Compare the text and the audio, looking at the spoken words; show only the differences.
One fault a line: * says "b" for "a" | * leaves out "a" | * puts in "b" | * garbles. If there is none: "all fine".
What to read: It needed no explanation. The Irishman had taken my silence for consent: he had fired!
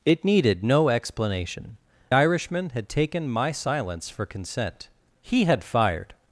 * leaves out "The"